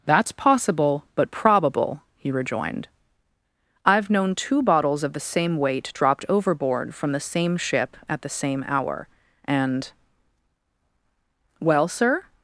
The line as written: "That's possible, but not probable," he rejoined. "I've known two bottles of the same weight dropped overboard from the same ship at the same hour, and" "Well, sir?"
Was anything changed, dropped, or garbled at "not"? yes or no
yes